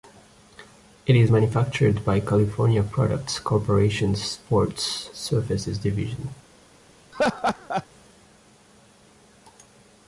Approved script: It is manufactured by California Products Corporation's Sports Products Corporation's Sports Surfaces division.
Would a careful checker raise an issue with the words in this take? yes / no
yes